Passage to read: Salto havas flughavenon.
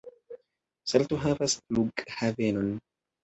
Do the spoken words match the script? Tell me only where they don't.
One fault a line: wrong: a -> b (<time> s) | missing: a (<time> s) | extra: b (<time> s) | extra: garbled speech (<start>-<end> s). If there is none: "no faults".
no faults